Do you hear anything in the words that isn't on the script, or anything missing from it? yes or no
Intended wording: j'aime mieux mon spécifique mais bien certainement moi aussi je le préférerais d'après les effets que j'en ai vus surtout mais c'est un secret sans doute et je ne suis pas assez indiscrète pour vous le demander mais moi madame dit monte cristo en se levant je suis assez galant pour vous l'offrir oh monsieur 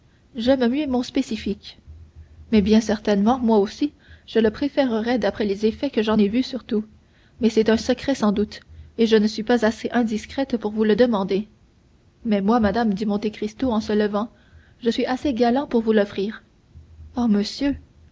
no